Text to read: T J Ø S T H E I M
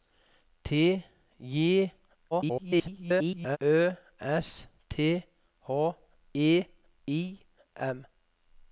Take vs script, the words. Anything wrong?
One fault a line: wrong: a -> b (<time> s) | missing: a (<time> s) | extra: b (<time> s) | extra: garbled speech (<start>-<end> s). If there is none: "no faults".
extra: garbled speech (2.3-3.6 s)